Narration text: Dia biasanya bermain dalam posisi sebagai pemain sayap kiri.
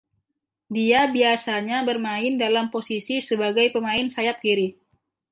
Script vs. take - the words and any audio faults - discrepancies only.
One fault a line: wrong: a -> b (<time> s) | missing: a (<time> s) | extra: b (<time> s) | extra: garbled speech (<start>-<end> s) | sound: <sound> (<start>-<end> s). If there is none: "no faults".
no faults